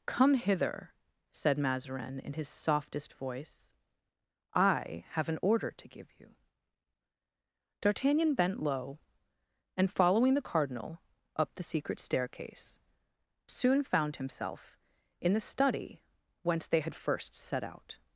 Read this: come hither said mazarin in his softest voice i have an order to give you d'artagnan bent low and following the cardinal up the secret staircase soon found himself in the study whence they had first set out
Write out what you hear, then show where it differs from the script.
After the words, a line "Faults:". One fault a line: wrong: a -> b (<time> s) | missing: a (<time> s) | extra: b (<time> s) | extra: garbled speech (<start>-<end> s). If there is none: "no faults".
come hither said mazarin in his softest voice i have an order to give you d'artagnan bent low and following the cardinal up the secret staircase soon found himself in the study whence they had first set out
Faults:
no faults